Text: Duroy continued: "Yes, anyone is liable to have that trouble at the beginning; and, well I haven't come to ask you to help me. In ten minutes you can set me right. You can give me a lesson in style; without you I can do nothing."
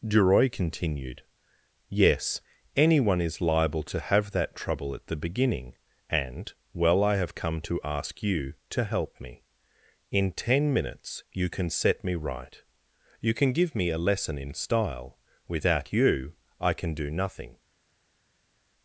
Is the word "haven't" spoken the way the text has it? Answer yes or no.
no